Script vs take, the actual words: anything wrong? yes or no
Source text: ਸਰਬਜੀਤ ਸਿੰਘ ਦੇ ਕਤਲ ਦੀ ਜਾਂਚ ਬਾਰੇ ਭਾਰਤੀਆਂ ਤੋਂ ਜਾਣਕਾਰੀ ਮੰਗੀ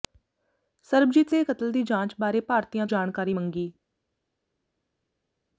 yes